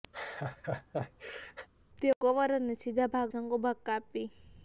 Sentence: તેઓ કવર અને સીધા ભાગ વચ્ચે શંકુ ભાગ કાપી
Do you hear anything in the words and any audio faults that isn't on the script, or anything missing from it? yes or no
yes